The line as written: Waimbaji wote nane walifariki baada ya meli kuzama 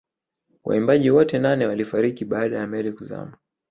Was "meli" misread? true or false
false